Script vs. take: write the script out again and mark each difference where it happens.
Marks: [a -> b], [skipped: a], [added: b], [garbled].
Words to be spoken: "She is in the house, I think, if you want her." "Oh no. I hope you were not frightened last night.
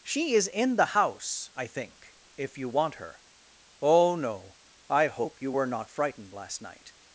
"She is in the house, I think, if you want her." "Oh no. I hope you were not frightened last night.